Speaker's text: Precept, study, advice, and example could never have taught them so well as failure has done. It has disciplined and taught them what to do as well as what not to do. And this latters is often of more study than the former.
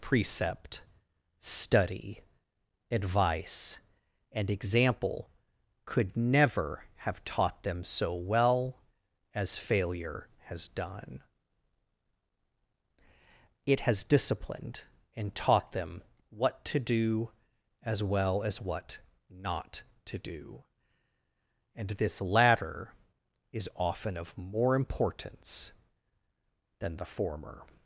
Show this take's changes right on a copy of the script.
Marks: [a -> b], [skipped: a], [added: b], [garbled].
Precept, study, advice, and example could never have taught them so well as failure has done. It has disciplined and taught them what to do as well as what not to do. And this [latters -> latter] is often of more [study -> importance] than the former.